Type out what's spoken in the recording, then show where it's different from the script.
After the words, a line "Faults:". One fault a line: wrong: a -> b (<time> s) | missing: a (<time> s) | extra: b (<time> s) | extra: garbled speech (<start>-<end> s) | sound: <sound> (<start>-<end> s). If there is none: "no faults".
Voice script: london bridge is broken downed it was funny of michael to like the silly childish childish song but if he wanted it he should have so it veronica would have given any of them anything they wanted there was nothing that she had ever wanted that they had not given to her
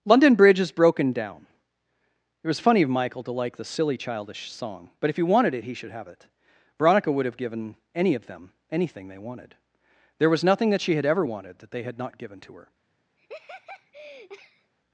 london bridge is broken down it was funny of michael to like the silly childish song but if he wanted it he should have it veronica would have given any of them anything they wanted there was nothing that she had ever wanted that they had not given to her
Faults:
wrong: downed -> down (1.1 s)
missing: childish (4.5 s)
missing: so (6.1 s)
sound: laugh (13.2-14.7 s)